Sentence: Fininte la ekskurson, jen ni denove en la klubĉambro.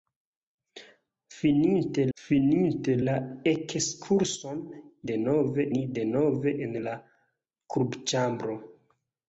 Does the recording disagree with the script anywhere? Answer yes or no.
yes